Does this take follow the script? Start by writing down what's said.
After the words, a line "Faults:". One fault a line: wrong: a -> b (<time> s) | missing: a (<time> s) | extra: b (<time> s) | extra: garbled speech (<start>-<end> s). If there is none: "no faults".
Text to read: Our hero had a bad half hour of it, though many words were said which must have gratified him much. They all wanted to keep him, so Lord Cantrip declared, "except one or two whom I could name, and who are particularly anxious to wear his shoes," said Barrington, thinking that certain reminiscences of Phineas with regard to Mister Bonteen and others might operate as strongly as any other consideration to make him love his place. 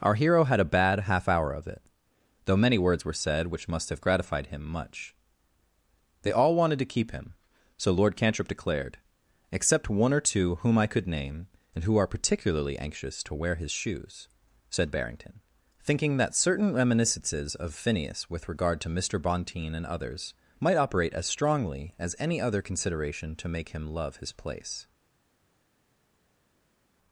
Our hero had a bad half hour of it, though many words were said which must have gratified him much. They all wanted to keep him, so Lord Cantrip declared, "except one or two whom I could name, and who are particularly anxious to wear his shoes," said Barrington, thinking that certain reminiscences of Phineas with regard to Mister Bonteen and others might operate as strongly as any other consideration to make him love his place.
Faults:
no faults